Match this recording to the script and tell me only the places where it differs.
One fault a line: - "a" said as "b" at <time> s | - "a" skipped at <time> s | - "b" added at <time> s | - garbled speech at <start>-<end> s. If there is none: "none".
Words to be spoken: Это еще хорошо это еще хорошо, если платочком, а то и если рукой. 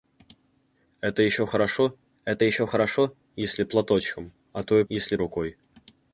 none